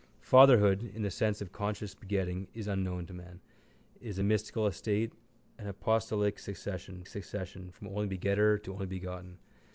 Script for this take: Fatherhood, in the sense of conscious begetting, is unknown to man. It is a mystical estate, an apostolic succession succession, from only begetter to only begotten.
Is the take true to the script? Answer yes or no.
yes